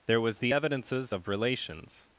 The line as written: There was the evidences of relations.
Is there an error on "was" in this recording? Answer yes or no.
no